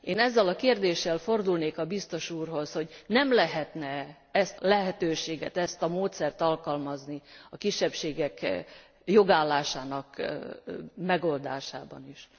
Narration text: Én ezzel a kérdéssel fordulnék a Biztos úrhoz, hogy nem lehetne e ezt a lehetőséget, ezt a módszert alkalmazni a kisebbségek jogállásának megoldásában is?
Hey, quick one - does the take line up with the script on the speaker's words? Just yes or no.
no